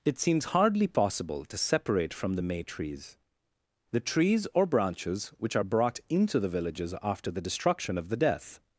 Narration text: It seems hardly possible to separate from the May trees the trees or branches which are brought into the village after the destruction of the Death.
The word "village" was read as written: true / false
false